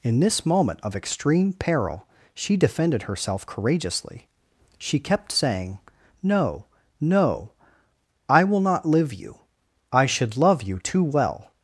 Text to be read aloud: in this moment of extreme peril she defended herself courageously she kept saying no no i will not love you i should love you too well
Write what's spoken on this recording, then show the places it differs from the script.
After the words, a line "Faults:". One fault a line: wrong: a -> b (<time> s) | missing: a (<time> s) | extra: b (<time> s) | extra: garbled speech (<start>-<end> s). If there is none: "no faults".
in this moment of extreme peril she defended herself courageously she kept saying no no i will not live you i should love you too well
Faults:
wrong: love -> live (8.8 s)